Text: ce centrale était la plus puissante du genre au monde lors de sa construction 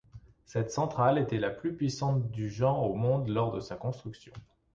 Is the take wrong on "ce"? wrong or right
wrong